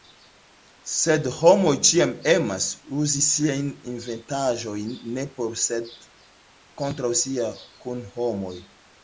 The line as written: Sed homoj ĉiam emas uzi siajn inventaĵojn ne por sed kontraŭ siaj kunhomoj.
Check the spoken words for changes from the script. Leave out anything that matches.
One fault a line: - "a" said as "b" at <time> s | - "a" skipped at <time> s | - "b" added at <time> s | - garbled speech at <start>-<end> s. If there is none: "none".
none